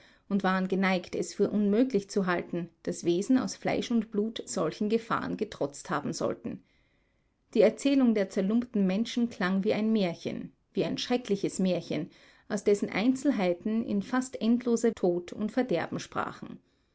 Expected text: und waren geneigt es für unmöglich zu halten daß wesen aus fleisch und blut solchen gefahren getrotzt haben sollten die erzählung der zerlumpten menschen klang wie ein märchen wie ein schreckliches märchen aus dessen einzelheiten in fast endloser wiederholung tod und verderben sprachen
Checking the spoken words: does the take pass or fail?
fail